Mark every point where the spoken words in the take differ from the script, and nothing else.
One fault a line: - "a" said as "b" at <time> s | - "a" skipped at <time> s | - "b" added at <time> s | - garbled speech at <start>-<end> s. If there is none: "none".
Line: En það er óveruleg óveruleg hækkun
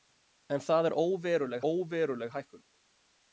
none